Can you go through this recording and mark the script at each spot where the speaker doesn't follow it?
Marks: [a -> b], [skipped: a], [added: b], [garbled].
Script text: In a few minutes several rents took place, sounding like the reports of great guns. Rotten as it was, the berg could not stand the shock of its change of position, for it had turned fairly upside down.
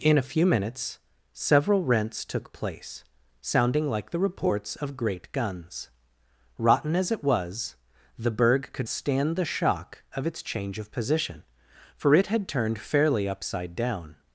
In a few minutes several rents took place, sounding like the reports of great guns. Rotten as it was, the berg could [skipped: not] stand the shock of its change of position, for it had turned fairly upside down.